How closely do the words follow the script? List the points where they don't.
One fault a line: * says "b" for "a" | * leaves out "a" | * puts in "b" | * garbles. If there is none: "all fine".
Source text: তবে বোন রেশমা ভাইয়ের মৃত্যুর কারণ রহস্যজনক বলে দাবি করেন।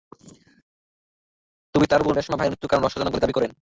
* puts in "তাঁর"